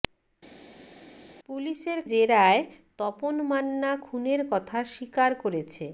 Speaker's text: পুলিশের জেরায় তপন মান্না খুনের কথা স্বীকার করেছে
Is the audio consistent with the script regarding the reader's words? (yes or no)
yes